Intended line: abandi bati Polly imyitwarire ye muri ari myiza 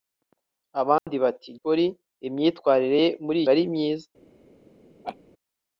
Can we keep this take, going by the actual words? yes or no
yes